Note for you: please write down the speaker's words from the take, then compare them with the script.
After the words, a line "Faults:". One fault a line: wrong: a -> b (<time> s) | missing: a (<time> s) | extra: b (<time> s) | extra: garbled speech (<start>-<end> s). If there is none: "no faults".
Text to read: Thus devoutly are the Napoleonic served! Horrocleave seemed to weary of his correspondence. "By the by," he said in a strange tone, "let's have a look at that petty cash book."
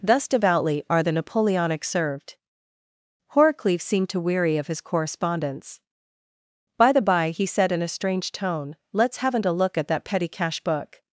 Thus devoutly are the Napoleonic served! Horrocleave seemed to weary of his correspondence. "By the by," he said in a strange tone, "let's haven't a look at that petty cash book."
Faults:
wrong: have -> haven't (9.2 s)